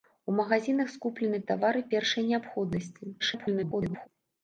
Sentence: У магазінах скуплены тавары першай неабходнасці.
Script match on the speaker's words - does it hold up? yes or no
no